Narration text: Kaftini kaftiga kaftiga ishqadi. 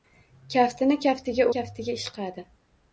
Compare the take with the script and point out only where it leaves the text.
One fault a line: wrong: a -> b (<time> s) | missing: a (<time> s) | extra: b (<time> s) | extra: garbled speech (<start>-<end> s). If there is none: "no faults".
no faults